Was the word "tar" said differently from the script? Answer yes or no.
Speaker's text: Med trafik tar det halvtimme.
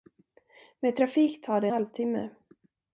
no